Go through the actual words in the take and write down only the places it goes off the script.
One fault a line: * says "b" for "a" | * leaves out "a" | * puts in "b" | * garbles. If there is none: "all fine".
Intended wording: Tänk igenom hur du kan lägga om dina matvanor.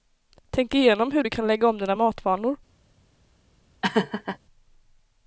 all fine